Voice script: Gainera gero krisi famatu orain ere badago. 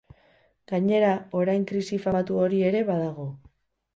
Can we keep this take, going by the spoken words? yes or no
no